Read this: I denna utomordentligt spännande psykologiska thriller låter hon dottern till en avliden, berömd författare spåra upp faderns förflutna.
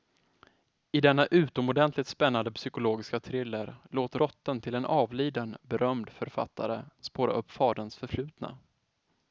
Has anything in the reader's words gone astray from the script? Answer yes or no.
yes